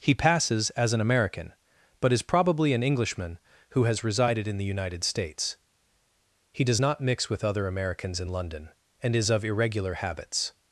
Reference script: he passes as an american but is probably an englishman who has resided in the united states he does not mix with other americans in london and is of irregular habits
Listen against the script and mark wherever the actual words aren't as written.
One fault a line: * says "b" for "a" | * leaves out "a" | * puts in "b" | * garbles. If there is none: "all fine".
all fine